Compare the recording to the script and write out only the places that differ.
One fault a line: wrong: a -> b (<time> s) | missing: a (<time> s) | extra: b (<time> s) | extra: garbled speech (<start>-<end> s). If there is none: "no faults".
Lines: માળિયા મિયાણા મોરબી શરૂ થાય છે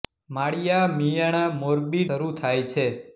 no faults